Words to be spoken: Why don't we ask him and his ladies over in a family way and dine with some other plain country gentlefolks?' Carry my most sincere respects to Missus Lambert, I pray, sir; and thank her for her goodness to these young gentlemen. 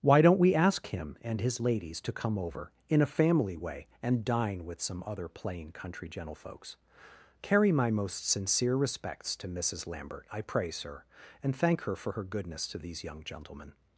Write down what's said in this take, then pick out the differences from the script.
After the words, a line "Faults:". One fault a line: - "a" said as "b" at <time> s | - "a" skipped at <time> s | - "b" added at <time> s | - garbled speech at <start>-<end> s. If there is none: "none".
Why don't we ask him and his ladies to come over in a family way and dine with some other plain country gentlefolks?' Carry my most sincere respects to Missus Lambert, I pray, sir; and thank her for her goodness to these young gentlemen.
Faults:
- "to come" added at 2.0 s